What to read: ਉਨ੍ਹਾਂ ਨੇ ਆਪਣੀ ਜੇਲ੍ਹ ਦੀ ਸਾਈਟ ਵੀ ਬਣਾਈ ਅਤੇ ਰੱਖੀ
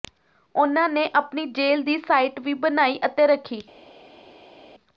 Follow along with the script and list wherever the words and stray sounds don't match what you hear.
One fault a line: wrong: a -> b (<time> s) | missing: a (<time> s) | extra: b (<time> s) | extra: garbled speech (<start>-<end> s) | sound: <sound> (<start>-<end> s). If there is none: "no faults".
no faults